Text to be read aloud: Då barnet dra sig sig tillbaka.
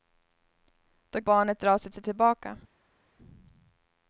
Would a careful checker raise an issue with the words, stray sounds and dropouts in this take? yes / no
no